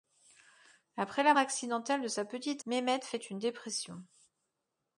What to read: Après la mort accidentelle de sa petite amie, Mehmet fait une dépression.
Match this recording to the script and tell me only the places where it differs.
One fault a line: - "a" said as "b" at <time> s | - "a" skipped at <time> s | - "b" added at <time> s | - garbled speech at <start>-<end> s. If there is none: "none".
- "mort" skipped at 1.4 s
- "amie" skipped at 2.6 s